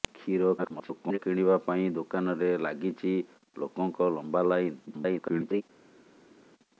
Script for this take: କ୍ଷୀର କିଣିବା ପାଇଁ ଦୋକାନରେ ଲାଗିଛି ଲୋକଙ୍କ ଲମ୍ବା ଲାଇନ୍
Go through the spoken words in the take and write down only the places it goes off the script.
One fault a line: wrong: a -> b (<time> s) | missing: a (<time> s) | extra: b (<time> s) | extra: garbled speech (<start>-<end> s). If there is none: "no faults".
extra: garbled speech (0.6-1.2 s)
extra: garbled speech (4.9-5.6 s)